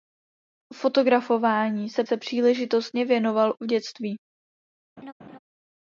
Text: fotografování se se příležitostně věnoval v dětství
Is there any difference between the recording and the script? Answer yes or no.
no